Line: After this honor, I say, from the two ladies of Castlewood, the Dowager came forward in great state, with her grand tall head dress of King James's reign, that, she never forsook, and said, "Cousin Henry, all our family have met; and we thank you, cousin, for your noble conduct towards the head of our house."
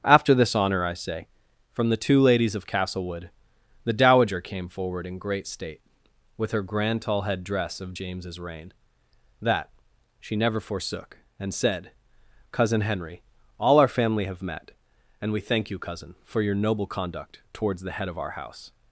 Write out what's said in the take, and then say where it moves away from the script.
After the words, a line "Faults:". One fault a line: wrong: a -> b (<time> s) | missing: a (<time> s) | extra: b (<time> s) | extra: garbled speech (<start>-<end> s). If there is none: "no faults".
After this honor, I say, from the two ladies of Castlewood, the Dowager came forward in great state, with her grand tall head dress of James's reign, that, she never forsook, and said, "Cousin Henry, all our family have met; and we thank you, cousin, for your noble conduct towards the head of our house."
Faults:
missing: King (7.9 s)